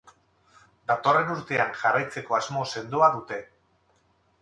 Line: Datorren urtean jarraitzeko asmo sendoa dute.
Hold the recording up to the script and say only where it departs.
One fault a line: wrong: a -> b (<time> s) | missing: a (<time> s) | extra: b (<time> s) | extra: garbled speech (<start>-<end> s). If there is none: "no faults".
no faults